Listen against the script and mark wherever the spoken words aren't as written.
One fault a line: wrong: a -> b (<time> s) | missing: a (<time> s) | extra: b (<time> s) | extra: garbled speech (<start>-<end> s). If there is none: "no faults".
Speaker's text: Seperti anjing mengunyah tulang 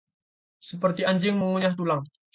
no faults